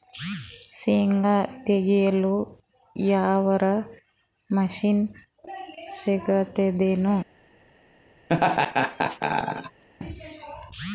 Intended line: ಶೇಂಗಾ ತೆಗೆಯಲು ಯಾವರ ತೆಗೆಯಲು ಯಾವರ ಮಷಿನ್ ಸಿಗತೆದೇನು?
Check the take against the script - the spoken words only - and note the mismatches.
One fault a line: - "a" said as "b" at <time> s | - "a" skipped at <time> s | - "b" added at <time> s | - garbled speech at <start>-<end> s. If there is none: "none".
- "ತೆಗೆಯಲು ಯಾವರ" skipped at 3.6 s